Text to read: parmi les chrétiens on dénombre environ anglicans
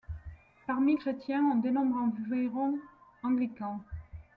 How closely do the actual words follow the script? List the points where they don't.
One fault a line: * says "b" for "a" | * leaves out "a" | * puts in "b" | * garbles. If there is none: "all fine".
* leaves out "les"